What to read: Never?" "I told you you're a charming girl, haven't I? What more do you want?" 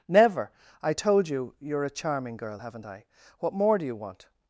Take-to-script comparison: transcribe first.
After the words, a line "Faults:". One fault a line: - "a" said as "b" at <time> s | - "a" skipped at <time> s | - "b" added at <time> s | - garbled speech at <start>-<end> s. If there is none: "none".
Never?" "I told you you're a charming girl, haven't I? What more do you want?"
Faults:
none